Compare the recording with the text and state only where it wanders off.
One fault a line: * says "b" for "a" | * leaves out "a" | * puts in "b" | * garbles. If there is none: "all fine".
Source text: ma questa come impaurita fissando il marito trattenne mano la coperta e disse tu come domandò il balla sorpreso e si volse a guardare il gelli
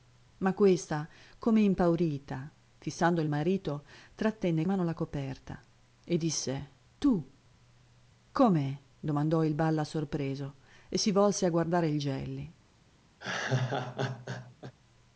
all fine